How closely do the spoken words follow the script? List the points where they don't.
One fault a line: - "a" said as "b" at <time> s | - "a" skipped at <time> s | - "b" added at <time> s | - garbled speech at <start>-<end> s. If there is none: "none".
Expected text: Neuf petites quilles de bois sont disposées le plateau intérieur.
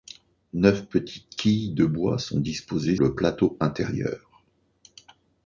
none